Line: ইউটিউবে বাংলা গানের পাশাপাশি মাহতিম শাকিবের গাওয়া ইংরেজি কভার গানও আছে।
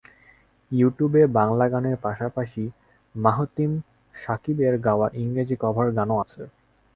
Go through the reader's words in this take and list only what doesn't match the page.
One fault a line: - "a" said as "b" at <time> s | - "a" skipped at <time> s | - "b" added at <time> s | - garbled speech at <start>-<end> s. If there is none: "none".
none